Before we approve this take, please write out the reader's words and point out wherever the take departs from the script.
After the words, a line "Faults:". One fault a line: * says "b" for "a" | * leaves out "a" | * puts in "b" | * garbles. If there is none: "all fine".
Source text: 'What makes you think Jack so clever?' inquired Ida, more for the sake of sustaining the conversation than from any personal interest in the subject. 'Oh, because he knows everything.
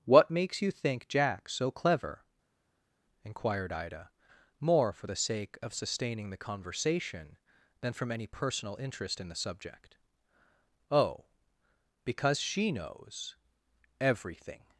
'What makes you think Jack so clever?' inquired Ida, more for the sake of sustaining the conversation than from any personal interest in the subject. 'Oh, because she knows everything.
Faults:
* says "she" for "he"